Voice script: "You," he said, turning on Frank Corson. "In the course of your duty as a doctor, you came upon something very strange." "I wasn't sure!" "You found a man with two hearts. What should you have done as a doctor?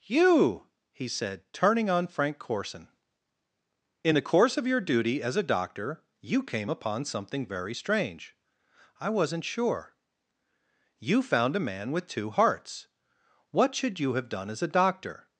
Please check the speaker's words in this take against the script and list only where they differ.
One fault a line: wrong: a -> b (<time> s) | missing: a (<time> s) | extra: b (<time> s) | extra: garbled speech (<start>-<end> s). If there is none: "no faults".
no faults